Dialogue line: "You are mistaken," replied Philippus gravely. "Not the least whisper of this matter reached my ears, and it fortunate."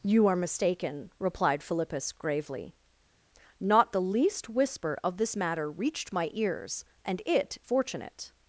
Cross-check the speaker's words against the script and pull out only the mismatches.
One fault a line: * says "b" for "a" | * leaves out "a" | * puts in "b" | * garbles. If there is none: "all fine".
all fine